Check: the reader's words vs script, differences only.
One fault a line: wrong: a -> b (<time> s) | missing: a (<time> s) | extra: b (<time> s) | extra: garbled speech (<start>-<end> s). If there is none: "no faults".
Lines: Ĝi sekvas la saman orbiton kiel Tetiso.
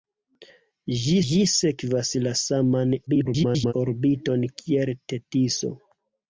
extra: ĝi (1.3 s)
extra: garbled speech (3.1-3.7 s)